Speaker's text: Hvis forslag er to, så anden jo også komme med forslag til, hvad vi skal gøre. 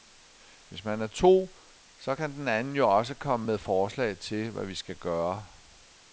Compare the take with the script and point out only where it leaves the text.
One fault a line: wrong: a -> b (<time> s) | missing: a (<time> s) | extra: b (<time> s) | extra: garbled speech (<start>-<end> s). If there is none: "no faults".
wrong: forslag -> man (0.8 s)
extra: kan den (2.1 s)